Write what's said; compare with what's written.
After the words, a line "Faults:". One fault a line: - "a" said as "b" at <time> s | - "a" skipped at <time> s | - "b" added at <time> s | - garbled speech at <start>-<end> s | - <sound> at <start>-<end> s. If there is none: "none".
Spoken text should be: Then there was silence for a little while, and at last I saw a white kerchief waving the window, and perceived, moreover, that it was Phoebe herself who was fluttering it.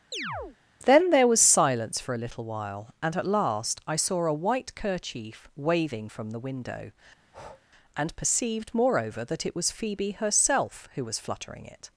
Then there was silence for a little while, and at last I saw a white kerchief waving from the window, and perceived, moreover, that it was Phoebe herself who was fluttering it.
Faults:
- chirp at 0.1-0.6 s
- "from" added at 6.1 s
- breath at 7.2-7.7 s